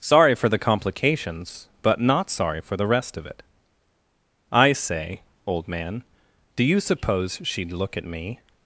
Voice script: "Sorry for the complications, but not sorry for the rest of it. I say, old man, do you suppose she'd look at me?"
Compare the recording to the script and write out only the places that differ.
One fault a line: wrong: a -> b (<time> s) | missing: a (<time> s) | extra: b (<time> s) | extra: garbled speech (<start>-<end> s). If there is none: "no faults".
no faults